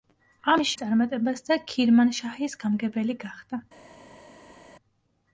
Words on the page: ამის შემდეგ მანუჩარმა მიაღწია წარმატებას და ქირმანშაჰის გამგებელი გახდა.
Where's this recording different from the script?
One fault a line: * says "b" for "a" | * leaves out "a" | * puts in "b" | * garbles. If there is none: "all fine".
* leaves out "შემდეგ მანუჩარმა მიაღწია"